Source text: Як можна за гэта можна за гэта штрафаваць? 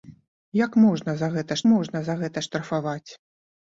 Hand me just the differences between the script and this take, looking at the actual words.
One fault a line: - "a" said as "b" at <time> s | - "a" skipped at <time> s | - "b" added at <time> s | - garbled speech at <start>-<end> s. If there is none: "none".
none